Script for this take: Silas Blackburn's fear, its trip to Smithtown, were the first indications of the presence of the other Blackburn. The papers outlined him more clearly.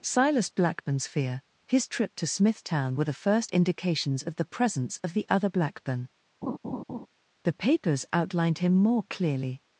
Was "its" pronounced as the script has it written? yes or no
no